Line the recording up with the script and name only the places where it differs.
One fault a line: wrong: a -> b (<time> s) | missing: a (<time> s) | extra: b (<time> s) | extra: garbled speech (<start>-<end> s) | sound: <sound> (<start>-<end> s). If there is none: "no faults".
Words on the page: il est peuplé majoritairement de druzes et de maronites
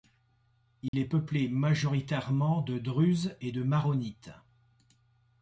sound: dropout (0.9-0.9 s)